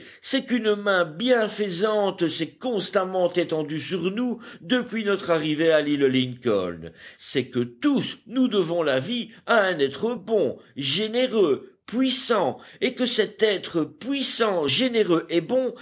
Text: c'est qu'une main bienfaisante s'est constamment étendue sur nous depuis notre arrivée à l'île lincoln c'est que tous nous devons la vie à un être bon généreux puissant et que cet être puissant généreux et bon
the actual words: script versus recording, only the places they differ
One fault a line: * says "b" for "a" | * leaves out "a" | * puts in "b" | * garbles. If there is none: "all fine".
all fine